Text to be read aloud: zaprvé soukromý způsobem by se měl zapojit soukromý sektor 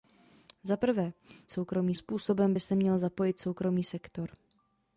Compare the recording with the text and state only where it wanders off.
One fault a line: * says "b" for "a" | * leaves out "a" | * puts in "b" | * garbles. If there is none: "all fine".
all fine